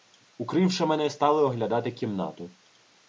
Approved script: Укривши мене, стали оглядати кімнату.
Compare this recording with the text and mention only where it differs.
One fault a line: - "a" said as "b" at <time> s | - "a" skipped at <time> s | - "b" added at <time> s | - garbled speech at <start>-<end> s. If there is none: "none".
none